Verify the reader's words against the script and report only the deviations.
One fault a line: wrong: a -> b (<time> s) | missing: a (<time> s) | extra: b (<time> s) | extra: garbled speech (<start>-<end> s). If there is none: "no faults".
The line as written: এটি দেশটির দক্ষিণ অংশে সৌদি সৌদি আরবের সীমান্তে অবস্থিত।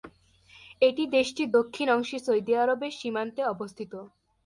missing: সৌদি (2.5 s)